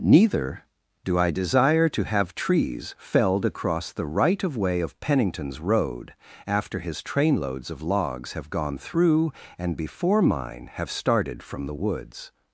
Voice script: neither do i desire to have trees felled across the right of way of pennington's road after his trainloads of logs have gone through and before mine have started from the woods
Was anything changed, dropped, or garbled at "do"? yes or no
no